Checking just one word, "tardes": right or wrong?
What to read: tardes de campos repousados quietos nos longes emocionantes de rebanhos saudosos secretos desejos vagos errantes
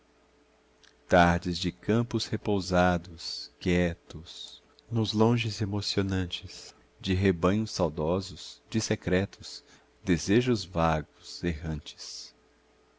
right